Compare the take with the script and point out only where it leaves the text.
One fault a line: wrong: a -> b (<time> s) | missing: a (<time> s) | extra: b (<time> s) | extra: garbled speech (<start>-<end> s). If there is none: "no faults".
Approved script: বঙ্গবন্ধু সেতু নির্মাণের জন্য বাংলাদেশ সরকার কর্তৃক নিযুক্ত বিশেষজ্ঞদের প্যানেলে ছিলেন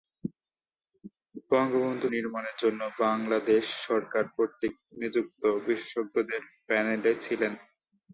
missing: সেতু (2.1 s)